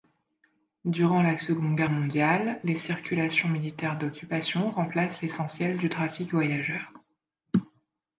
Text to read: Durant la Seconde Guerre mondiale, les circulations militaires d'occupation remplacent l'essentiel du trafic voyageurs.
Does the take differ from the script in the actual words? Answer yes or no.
no